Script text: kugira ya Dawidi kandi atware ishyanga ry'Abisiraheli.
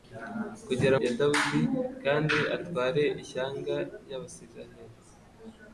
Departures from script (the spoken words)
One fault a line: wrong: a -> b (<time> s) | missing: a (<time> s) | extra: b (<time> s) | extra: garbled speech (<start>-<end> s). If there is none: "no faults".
no faults